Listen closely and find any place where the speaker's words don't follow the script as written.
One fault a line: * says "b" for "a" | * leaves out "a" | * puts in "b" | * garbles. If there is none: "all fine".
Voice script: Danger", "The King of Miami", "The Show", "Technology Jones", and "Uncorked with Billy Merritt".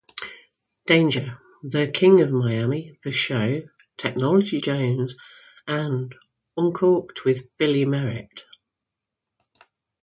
all fine